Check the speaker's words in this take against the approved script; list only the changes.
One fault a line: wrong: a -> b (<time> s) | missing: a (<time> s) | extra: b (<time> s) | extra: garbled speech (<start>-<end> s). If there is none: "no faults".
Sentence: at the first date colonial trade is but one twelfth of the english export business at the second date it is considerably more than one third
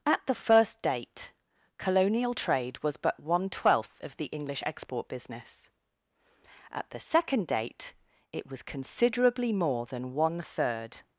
wrong: is -> was (2.8 s)
wrong: is -> was (8.5 s)